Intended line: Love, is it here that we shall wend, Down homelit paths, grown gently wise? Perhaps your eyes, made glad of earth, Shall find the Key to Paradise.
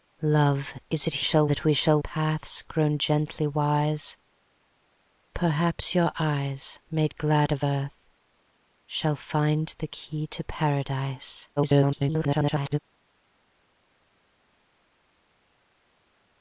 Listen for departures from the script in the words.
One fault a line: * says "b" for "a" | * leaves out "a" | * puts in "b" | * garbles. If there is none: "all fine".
* says "shall" for "here"
* leaves out "wend Down homelit"
* garbles